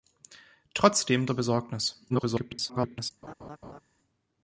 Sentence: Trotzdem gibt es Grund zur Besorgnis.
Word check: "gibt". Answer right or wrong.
wrong